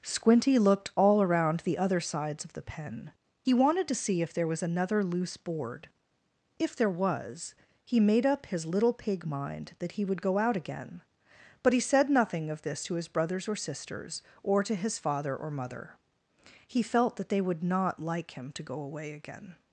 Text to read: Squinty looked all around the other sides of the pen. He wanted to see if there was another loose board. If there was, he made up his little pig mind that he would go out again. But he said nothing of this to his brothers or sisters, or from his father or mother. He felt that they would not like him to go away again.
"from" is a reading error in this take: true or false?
true